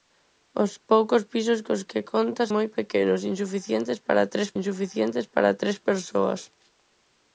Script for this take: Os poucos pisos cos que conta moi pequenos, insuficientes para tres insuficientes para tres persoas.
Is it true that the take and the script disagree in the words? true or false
false